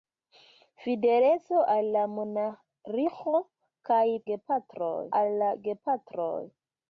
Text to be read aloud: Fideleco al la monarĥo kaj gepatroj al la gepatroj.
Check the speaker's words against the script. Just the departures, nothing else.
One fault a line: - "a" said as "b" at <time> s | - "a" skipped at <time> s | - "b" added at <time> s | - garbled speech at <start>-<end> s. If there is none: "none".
none